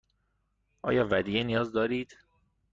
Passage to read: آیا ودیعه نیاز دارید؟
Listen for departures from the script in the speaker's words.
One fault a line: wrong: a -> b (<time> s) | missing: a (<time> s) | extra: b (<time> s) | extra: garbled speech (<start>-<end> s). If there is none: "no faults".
no faults